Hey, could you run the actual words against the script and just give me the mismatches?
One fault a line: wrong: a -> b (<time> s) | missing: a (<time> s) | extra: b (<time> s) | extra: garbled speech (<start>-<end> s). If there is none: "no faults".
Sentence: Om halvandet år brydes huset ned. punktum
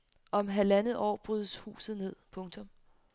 no faults